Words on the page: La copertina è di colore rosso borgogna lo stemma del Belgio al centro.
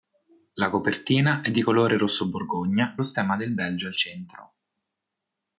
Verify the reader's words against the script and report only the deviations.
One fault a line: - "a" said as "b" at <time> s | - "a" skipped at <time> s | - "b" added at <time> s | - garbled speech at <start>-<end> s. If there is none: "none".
none